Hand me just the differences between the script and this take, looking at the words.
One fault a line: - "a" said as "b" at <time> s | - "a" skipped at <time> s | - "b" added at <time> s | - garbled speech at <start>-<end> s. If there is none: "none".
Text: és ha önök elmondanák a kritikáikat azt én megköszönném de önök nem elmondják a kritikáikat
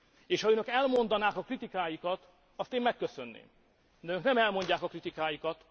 none